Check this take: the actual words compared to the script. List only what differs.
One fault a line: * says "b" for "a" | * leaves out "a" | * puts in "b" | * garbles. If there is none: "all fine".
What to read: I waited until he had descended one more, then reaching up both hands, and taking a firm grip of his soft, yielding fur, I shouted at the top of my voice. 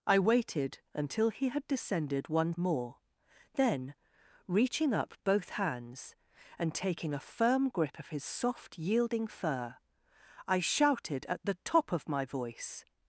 all fine